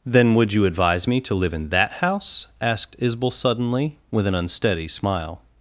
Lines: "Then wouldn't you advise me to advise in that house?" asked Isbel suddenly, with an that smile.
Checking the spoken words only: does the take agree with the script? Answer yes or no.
no